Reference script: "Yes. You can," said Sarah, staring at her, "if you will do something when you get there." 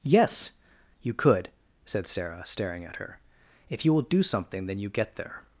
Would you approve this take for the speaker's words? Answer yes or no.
no